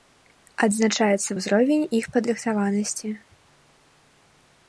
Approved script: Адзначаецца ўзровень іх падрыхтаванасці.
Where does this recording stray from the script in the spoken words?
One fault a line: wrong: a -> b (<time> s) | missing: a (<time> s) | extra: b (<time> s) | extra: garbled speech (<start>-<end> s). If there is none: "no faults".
no faults